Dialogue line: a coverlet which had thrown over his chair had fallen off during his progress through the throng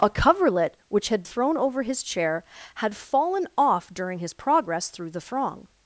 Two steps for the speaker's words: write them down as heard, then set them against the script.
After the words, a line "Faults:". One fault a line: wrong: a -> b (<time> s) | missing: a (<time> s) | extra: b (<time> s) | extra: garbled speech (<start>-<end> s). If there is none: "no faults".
a coverlet which had thrown over his chair had fallen off during his progress through the throng
Faults:
no faults